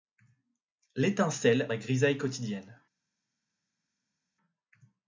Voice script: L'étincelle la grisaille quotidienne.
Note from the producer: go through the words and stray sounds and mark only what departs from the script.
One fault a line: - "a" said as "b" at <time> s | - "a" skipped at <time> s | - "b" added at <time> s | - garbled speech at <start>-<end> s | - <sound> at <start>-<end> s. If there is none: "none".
none